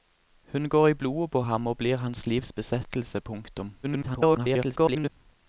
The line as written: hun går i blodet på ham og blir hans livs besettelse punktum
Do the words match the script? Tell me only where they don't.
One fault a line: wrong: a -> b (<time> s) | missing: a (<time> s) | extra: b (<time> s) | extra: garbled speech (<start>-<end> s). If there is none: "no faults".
extra: garbled speech (3.8-5.1 s)